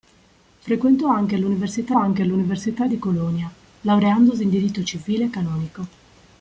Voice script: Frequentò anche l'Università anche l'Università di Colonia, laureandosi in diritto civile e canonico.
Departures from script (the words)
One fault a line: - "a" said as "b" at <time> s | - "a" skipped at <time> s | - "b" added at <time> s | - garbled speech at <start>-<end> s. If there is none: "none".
none